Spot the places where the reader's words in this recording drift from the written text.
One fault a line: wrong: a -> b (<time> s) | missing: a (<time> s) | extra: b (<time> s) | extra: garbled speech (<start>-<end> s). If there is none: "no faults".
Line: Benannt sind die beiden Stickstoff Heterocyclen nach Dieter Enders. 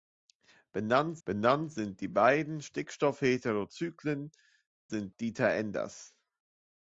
extra: benannt (1.2 s)
wrong: nach -> sind (4.9 s)